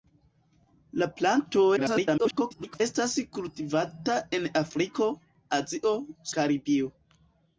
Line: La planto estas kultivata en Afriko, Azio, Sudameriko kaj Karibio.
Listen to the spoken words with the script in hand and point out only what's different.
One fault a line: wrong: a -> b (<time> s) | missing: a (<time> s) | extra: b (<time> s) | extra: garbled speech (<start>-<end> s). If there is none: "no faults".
extra: garbled speech (1.8-2.8 s)
missing: Sudameriko kaj (6.0 s)